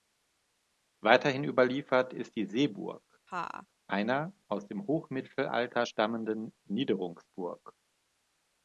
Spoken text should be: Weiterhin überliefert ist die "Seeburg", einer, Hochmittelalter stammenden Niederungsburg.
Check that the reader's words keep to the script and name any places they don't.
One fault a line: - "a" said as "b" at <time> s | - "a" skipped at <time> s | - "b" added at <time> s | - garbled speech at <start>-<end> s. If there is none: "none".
- "aus dem" added at 4.5 s